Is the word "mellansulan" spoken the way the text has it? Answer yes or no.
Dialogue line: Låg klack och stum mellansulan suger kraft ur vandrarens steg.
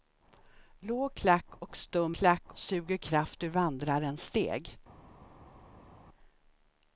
no